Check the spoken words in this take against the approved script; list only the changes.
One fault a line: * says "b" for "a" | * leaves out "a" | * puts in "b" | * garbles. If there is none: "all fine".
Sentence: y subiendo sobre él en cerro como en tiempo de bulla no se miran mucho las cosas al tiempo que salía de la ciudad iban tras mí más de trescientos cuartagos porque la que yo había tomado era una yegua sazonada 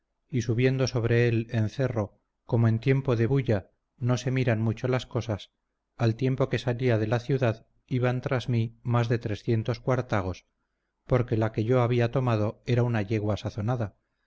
all fine